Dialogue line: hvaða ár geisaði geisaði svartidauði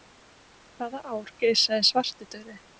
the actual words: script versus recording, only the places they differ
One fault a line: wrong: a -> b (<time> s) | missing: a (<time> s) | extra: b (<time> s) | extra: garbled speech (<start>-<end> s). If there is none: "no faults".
missing: geisaði (1.9 s)